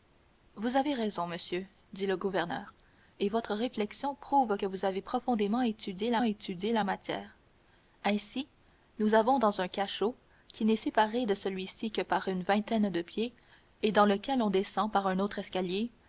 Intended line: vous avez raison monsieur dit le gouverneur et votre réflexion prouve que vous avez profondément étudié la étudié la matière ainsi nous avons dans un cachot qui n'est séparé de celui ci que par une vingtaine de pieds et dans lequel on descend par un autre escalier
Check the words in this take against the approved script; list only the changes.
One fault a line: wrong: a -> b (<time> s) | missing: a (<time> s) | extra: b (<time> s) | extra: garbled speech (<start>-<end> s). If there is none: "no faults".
no faults